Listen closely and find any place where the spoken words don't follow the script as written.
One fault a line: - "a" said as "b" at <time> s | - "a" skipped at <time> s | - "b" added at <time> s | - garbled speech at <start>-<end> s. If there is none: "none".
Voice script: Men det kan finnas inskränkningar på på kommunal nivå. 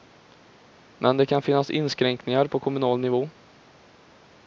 - "på" skipped at 2.6 s